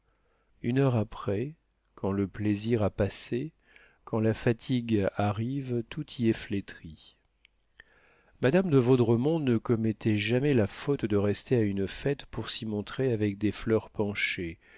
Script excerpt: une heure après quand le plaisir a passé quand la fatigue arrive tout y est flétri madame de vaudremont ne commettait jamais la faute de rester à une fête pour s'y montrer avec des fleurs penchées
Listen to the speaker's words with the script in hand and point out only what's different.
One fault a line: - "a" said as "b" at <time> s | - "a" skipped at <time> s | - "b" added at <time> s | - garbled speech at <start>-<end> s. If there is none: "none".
none